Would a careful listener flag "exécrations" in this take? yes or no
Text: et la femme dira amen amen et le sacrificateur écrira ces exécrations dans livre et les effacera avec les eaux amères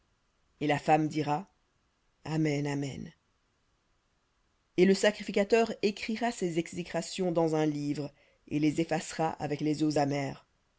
no